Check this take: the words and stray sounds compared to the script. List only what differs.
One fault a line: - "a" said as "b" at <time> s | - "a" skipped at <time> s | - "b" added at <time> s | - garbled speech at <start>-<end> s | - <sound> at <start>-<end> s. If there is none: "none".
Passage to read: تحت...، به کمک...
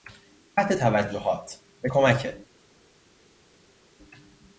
- "توجهات" added at 0.7 s